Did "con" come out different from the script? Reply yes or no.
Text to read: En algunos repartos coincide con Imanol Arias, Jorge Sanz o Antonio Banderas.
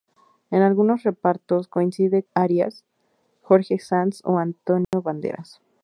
yes